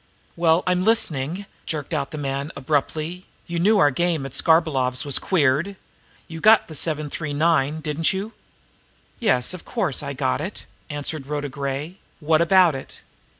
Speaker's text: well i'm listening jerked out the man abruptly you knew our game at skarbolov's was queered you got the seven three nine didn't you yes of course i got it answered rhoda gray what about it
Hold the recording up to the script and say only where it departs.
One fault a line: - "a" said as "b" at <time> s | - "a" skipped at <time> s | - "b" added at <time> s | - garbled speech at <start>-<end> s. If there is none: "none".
none